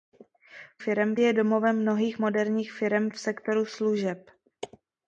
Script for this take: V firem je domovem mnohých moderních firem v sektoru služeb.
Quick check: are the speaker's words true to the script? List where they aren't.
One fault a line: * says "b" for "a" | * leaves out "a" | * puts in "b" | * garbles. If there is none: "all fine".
all fine